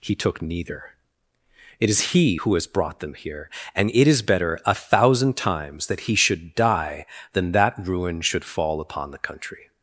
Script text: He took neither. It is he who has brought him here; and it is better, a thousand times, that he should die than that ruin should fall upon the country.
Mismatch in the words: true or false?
true